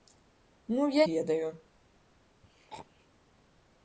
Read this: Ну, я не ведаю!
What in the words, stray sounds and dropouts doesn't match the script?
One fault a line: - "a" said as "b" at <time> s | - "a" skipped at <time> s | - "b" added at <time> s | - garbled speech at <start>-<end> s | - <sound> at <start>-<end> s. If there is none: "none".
- "не" skipped at 1.1 s
- throat clearing at 2.4-3.1 s